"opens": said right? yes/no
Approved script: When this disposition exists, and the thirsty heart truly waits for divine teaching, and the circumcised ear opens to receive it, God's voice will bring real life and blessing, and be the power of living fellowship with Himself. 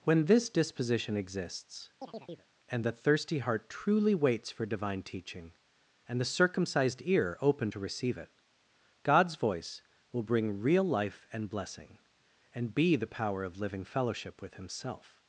no